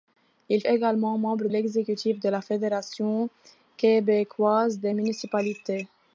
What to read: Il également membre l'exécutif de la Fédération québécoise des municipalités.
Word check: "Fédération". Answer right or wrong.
right